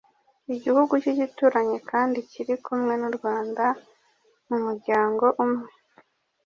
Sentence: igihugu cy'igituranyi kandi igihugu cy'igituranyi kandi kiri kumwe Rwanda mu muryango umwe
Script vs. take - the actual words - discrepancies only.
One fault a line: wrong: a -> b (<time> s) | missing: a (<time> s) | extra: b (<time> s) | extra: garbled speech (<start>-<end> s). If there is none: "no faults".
missing: igihugu cy'igituranyi kandi (2.2 s)
extra: n'u (3.0 s)